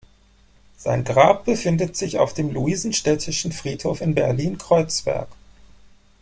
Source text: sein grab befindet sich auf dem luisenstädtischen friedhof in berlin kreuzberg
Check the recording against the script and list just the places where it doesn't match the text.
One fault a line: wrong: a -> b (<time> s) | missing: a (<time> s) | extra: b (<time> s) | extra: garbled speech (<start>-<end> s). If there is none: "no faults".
no faults